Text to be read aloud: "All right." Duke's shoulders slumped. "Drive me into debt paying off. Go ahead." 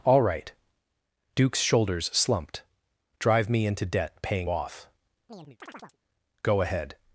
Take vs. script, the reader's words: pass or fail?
pass